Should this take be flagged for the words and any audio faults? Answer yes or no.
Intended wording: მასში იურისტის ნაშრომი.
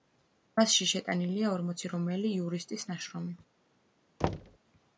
yes